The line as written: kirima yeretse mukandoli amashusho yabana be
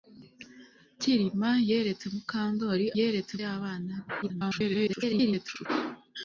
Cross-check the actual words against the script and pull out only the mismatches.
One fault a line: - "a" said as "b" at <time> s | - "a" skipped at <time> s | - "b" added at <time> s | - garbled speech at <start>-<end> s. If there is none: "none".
- "amashusho" said as "yeretse" at 3.0 s
- garbled speech at 4.2-5.7 s